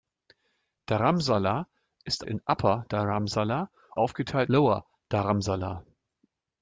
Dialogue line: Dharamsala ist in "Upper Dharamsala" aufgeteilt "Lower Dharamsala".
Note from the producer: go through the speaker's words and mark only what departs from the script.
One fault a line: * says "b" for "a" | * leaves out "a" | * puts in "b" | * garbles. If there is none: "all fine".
all fine